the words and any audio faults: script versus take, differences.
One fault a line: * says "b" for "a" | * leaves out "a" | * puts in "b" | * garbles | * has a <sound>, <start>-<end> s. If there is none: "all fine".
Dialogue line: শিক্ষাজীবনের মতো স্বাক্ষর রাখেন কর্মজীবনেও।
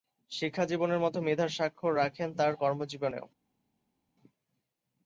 * puts in "মেধার"
* puts in "তার"